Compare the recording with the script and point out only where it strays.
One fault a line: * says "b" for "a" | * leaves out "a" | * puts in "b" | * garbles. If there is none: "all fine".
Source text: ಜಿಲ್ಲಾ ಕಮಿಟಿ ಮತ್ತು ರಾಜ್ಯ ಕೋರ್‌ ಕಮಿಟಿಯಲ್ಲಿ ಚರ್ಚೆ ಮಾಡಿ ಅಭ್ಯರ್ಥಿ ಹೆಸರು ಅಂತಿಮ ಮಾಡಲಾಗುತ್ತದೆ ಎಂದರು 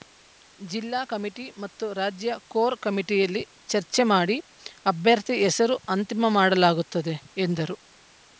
all fine